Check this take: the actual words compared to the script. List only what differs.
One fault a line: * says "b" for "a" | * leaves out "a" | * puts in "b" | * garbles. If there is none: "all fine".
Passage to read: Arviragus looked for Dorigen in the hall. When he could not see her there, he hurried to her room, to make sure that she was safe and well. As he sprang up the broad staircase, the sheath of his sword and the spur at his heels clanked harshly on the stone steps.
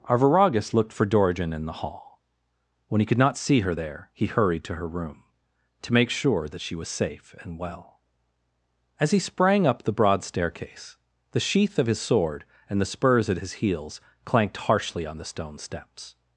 * says "spurs" for "spur"